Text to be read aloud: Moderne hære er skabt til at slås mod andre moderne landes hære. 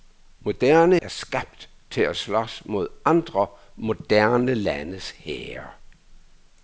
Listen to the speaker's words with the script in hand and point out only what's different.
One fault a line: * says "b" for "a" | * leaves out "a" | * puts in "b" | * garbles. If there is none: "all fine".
* leaves out "hære"